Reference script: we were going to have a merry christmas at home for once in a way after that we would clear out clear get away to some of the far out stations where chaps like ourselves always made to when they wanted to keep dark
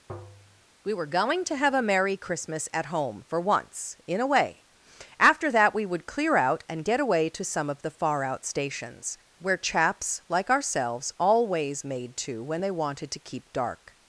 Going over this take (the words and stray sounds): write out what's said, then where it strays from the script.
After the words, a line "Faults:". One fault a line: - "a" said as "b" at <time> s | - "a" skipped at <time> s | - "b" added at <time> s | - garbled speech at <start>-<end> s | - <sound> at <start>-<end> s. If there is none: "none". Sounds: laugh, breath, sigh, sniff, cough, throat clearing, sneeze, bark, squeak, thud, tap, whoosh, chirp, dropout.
we were going to have a merry christmas at home for once in a way after that we would clear out and get away to some of the far out stations where chaps like ourselves always made to when they wanted to keep dark
Faults:
- tap at 0.1-0.6 s
- "clear" said as "and" at 6.7 s